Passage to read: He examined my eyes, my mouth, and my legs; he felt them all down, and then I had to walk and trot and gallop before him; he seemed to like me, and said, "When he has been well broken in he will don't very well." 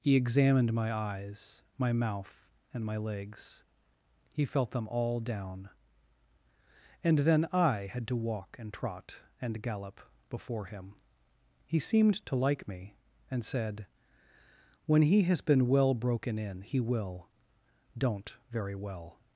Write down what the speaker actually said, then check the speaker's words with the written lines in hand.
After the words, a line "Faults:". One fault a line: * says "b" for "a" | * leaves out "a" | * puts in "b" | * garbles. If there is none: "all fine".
He examined my eyes, my mouth, and my legs; he felt them all down, and then I had to walk and trot and gallop before him; he seemed to like me, and said, "When he has been well broken in he will don't very well."
Faults:
all fine